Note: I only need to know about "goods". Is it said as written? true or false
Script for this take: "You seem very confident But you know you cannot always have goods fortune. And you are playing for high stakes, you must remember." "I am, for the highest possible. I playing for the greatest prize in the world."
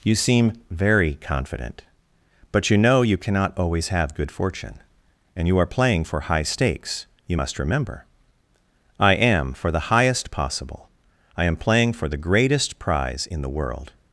false